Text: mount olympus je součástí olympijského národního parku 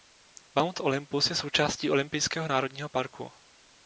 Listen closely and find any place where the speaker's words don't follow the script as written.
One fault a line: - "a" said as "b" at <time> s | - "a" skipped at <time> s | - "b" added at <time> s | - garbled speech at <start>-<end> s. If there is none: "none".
none